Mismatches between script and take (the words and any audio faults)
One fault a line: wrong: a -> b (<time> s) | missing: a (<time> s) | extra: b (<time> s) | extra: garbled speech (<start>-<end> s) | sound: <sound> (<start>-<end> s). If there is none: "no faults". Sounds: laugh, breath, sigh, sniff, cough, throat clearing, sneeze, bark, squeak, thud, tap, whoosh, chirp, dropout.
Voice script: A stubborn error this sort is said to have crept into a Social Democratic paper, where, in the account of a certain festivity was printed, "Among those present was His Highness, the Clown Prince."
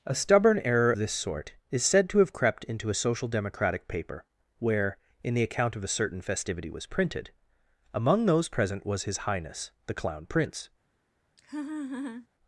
sound: laugh (11.4-12.3 s)